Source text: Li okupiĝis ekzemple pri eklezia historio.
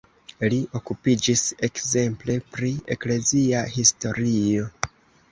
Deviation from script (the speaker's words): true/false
false